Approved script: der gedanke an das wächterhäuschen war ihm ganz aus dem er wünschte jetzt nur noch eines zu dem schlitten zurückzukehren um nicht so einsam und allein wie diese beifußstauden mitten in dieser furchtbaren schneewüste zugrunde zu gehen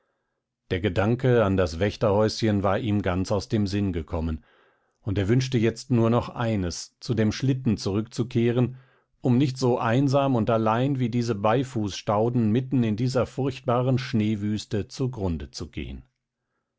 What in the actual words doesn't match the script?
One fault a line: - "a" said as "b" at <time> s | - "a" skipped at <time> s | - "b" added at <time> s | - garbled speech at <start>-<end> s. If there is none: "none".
- "sinn gekommen und" added at 3.7 s